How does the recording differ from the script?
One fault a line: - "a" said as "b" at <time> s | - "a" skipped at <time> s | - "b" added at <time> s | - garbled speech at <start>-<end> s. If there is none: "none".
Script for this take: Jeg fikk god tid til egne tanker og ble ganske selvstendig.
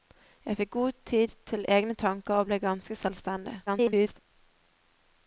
- garbled speech at 3.7-4.2 s